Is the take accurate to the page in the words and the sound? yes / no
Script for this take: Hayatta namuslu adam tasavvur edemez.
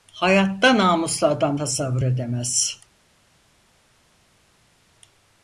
yes